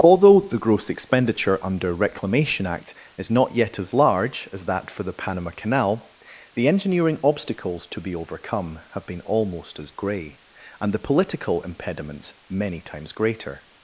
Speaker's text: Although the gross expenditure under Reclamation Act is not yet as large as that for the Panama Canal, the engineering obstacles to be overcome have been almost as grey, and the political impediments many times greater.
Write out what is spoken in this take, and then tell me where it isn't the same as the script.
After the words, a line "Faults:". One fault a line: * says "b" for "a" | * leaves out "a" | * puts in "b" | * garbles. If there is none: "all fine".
Although the gross expenditure under Reclamation Act is not yet as large as that for the Panama Canal, the engineering obstacles to be overcome have been almost as grey, and the political impediments many times greater.
Faults:
all fine